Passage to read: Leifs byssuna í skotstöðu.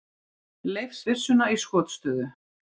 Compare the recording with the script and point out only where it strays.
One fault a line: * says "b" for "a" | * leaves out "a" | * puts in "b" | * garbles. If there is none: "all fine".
all fine